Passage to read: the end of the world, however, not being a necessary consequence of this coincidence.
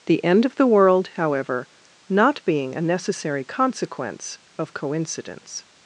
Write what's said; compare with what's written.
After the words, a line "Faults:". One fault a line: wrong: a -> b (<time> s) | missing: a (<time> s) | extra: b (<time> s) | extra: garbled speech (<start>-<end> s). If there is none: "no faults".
the end of the world, however, not being a necessary consequence of coincidence.
Faults:
missing: this (4.7 s)